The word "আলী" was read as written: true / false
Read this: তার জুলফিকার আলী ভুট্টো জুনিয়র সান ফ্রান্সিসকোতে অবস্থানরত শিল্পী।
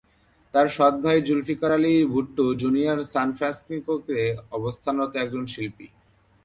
true